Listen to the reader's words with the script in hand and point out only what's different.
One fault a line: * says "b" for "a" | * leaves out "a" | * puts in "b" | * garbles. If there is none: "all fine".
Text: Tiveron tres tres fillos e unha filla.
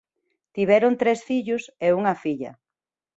* leaves out "tres"